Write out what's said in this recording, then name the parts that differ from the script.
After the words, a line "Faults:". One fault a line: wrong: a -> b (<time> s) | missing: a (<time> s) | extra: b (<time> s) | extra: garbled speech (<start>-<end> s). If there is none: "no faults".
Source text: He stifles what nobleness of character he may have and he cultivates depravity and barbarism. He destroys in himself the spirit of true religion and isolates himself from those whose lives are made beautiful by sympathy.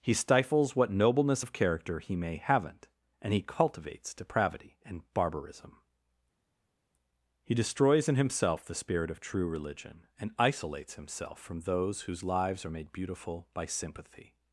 He stifles what nobleness of character he may haven't and he cultivates depravity and barbarism. He destroys in himself the spirit of true religion and isolates himself from those whose lives are made beautiful by sympathy.
Faults:
wrong: have -> haven't (2.4 s)